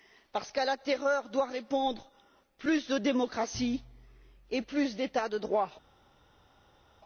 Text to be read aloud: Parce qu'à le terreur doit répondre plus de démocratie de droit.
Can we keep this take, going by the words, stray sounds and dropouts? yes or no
no